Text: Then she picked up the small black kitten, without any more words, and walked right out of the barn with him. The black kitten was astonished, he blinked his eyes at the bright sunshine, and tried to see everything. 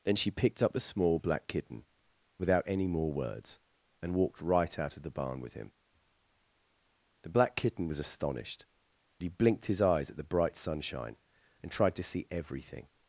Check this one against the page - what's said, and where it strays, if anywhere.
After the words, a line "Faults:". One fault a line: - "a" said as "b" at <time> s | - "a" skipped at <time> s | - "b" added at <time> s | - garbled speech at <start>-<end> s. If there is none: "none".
Then she picked up the small black kitten, without any more words, and walked right out of the barn with him. The black kitten was astonished, he blinked his eyes at the bright sunshine, and tried to see everything.
Faults:
none